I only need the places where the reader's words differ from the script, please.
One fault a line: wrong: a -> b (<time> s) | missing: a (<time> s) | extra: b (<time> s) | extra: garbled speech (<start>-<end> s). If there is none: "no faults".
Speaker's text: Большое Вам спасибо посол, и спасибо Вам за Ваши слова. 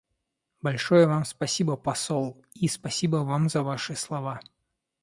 no faults